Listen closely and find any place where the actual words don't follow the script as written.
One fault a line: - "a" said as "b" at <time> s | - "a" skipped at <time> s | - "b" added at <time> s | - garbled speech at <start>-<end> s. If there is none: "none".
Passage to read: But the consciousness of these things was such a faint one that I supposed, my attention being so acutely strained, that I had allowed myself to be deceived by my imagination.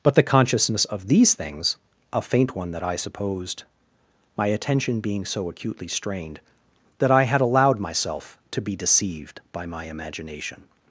- "was such" skipped at 1.8 s